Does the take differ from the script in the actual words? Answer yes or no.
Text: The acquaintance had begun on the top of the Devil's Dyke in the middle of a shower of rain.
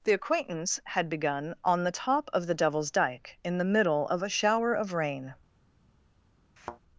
no